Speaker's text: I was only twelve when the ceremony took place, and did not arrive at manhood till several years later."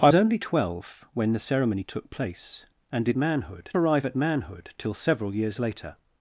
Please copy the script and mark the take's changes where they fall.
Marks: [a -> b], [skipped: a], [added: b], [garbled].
I [skipped: was] only twelve when the ceremony took place, and did [not -> manhood] arrive at manhood till several years later."